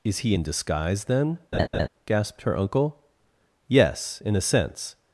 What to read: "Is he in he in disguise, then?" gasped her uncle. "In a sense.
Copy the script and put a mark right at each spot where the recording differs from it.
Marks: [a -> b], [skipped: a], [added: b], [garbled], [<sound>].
"Is he in [skipped: he in] disguise, then?" [laugh] gasped her uncle. [added: Yes] "In a sense.